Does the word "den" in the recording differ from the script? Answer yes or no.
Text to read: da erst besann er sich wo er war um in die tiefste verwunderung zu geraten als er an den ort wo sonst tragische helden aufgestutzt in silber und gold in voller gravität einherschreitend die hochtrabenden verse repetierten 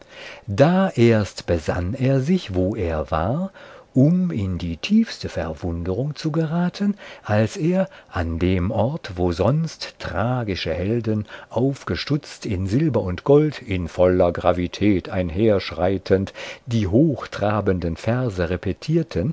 yes